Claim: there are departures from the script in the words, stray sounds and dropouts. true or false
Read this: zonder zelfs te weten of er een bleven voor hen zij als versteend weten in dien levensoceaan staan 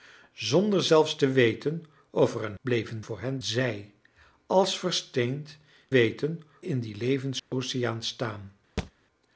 true